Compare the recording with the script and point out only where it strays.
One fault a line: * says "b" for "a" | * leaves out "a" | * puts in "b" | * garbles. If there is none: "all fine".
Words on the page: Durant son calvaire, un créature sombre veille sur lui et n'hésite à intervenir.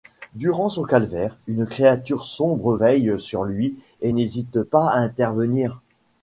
* says "une" for "un"
* puts in "pas"